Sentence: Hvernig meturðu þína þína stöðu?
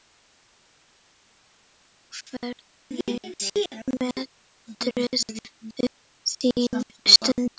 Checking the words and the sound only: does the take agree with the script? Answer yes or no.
no